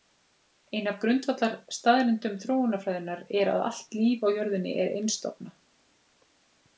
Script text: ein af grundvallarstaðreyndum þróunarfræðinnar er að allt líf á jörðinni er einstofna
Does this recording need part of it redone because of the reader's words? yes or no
no